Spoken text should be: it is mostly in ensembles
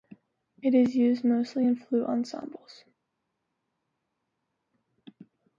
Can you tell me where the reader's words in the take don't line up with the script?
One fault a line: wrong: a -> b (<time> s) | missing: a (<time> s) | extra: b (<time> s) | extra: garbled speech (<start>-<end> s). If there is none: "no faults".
extra: used (0.9 s)
extra: flute (1.8 s)